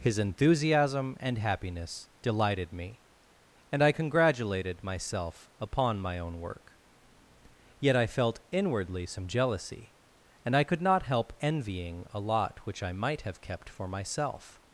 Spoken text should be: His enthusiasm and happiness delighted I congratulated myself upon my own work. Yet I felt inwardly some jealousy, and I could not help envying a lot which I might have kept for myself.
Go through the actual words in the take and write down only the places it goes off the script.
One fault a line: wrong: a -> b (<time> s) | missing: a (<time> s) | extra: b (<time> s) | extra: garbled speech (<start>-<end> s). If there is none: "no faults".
extra: me and (2.7 s)